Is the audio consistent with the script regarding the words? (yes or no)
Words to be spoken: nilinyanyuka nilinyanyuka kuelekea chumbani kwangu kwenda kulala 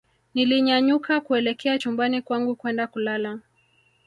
no